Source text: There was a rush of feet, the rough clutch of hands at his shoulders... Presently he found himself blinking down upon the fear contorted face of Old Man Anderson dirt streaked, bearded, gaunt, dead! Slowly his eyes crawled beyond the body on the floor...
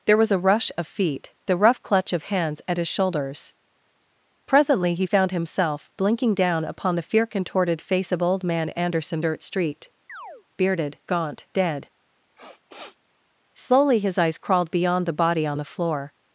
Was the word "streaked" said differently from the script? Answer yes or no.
yes